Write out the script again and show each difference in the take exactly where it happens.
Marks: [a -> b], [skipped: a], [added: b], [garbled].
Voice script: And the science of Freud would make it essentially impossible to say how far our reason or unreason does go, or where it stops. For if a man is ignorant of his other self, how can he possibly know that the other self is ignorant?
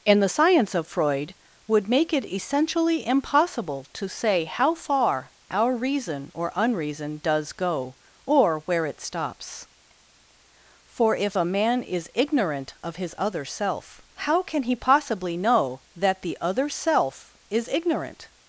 And the science of Freud would make it essentially impossible to say how far our reason or unreason does go, or where it stops. For if a man is ignorant of his other self, how can he possibly know that the other self is ignorant?